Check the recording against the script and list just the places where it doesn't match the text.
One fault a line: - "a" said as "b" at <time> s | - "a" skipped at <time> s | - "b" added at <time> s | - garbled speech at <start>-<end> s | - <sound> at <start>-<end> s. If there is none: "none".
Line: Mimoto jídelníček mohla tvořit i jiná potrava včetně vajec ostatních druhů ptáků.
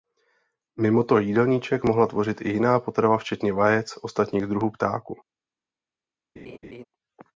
- laugh at 6.4-6.8 s